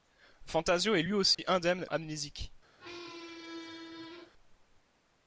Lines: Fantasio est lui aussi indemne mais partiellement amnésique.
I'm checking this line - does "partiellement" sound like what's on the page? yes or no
no